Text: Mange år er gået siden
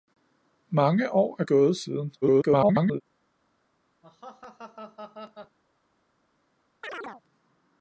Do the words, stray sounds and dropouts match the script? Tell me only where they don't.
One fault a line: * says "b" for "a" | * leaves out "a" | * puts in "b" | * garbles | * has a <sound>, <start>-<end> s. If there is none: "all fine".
* garbles
* has a laugh, 4.0-5.6 s
* has a chirp, 6.8-7.2 s